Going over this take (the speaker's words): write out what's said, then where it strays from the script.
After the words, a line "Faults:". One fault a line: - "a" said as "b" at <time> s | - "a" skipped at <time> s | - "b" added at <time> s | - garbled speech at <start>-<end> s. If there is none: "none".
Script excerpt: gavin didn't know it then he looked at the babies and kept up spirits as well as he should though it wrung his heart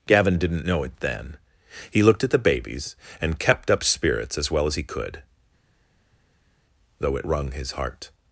gavin didn't know it then he looked at the babies and kept up spirits as well as he could though it wrung his heart
Faults:
- "should" said as "could" at 4.8 s